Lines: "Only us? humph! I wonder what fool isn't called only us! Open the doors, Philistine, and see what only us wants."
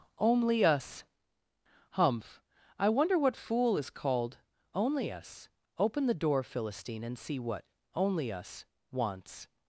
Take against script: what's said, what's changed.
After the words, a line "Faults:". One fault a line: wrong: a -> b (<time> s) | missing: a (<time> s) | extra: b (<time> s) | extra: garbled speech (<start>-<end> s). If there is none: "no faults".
"Only us? humph! I wonder what fool is called only us! Open the door, Philistine, and see what only us wants."
Faults:
wrong: isn't -> is (3.8 s)
wrong: doors -> door (6.1 s)